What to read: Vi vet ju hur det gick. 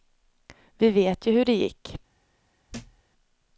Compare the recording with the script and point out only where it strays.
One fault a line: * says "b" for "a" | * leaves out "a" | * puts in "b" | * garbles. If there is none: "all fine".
all fine